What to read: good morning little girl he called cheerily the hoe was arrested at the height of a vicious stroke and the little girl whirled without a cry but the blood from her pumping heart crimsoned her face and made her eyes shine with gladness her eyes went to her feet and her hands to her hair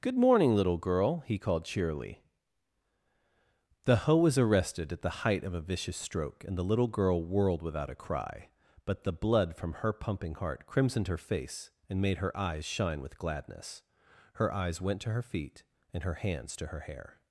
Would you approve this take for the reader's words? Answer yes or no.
yes